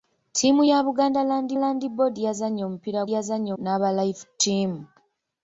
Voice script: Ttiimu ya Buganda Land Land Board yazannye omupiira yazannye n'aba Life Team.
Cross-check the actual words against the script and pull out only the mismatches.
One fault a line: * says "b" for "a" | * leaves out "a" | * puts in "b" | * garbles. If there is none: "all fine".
all fine